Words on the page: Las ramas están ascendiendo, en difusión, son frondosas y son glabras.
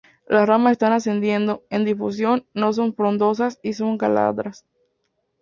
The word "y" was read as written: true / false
true